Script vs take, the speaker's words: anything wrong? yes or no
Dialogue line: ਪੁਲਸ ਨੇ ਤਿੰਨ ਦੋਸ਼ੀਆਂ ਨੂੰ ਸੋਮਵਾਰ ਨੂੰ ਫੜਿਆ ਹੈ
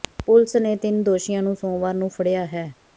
no